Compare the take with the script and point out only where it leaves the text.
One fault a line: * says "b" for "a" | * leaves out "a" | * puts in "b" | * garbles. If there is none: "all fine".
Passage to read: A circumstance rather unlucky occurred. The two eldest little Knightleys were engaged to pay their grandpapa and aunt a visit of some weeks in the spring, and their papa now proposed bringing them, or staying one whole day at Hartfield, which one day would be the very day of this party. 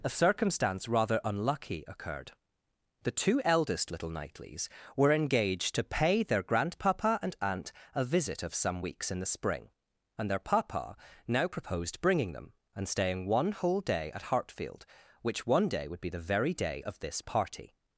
* says "and" for "or"